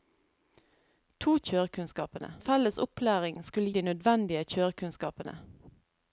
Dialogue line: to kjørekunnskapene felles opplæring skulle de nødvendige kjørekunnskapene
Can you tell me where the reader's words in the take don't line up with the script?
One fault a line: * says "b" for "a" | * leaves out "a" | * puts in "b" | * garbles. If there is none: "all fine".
all fine